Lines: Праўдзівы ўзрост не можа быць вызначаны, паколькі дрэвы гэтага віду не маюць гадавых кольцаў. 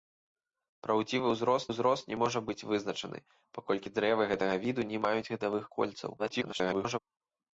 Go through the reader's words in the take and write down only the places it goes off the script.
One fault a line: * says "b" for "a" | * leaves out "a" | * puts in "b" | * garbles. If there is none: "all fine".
* puts in "ўзрост"
* garbles